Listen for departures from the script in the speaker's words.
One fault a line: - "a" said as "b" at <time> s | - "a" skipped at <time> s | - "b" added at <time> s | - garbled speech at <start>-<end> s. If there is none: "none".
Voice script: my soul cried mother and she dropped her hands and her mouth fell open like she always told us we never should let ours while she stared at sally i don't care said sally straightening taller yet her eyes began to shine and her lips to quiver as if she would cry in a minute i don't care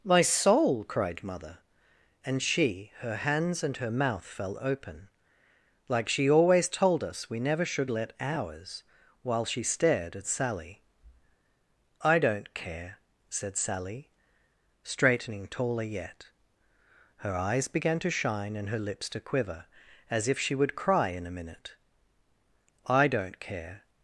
- "dropped" skipped at 2.9 s